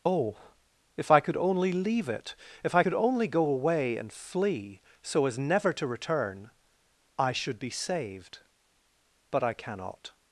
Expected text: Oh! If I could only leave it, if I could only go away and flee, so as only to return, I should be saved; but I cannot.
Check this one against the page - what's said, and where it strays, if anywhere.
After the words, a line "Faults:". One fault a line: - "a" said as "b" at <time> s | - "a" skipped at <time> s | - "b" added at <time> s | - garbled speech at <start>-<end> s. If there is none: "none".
Oh! If I could only leave it, if I could only go away and flee, so as never to return, I should be saved; but I cannot.
Faults:
- "only" said as "never" at 5.4 s